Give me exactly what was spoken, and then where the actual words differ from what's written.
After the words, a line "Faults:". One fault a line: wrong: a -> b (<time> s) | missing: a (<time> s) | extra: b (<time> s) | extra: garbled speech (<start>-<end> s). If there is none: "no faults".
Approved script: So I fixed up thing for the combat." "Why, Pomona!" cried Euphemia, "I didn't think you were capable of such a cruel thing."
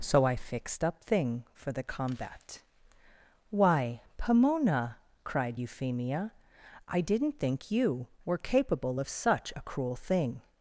So I fixed up thing for the combat." "Why, Pomona!" cried Euphemia, "I didn't think you were capable of such a cruel thing."
Faults:
no faults